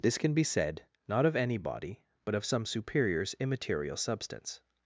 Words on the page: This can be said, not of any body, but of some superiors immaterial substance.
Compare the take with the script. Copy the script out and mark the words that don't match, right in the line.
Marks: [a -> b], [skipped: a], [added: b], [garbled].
This can be said, not of any body, but of some superiors immaterial substance.